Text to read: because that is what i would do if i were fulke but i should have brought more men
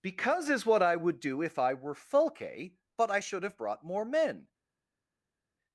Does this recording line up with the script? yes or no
no